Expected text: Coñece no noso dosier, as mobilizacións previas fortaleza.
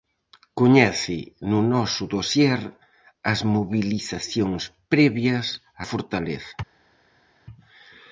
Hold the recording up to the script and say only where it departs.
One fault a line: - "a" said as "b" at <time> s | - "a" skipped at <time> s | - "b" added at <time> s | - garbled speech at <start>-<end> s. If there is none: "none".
none